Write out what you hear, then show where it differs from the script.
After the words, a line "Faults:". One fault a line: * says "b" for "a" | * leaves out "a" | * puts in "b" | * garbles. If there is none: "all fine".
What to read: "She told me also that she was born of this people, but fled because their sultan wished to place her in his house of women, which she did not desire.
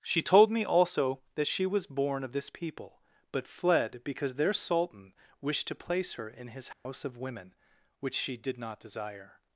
"She told me also that she was born of this people, but fled because their sultan wished to place her in his house of women, which she did not desire.
Faults:
all fine